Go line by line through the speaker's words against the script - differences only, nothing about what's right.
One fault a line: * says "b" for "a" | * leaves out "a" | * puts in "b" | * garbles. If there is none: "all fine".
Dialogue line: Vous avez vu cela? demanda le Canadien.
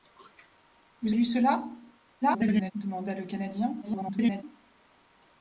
* leaves out "avez"
* garbles
* garbles